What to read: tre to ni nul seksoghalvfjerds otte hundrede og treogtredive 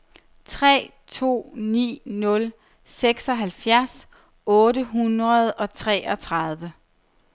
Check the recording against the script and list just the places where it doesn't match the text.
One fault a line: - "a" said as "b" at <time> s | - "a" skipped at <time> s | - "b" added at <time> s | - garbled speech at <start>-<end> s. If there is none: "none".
none